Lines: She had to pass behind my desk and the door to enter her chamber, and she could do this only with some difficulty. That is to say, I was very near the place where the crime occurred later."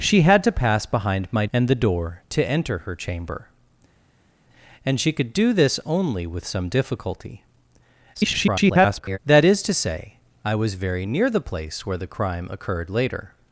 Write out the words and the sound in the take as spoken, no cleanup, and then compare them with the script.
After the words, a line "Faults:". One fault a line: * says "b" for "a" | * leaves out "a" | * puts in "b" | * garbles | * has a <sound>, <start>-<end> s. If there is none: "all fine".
She had to pass behind my and the door to enter her chamber, and she could do this only with some difficulty. [garbled] That is to say, I was very near the place where the crime occurred later."
Faults:
* leaves out "desk"
* garbles